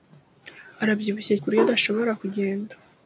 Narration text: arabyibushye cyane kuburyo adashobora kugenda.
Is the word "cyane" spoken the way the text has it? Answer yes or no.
no